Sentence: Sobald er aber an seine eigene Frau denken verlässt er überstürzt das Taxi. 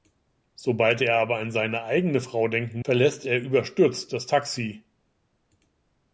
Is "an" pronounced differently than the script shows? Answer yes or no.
no